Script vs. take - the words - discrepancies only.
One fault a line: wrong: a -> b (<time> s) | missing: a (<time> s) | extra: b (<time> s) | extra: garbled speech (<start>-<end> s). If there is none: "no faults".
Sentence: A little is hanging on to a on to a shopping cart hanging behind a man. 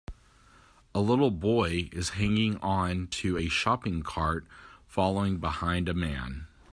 extra: boy (1.3 s)
missing: on to a (3.5 s)
wrong: hanging -> following (4.9 s)